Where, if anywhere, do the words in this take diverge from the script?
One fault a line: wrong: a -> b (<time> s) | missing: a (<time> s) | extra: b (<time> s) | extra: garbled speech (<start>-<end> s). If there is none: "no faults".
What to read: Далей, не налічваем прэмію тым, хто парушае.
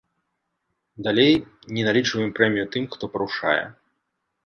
no faults